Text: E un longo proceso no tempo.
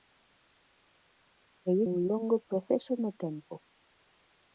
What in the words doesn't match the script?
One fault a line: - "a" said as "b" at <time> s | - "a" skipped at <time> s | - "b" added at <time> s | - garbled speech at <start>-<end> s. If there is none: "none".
none